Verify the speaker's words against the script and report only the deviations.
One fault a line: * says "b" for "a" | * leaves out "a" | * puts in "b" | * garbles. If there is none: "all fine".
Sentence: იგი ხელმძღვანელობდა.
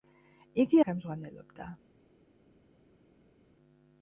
all fine